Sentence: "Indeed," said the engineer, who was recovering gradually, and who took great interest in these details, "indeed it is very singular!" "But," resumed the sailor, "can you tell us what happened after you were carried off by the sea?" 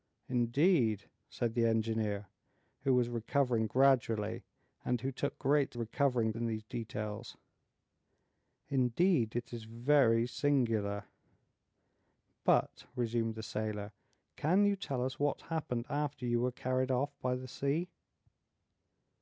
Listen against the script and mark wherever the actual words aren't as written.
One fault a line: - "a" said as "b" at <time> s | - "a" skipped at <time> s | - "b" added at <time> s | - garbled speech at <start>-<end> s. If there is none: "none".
- "interest" said as "recovering" at 5.7 s